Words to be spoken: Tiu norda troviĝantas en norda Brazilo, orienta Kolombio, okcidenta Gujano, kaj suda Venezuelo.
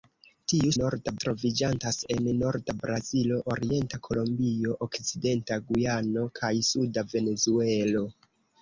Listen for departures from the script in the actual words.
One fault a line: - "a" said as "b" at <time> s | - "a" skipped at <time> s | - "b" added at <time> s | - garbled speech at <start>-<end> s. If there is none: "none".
none